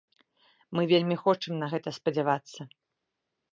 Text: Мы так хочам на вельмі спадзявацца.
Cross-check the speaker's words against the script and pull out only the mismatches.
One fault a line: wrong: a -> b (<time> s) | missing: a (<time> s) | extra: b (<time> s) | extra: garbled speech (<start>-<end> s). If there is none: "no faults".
wrong: так -> вельмі (0.9 s)
wrong: вельмі -> гэта (1.7 s)